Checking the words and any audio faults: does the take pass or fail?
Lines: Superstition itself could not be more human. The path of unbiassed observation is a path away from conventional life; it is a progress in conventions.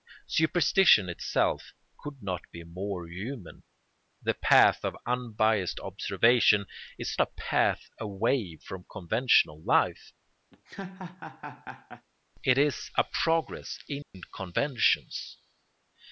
fail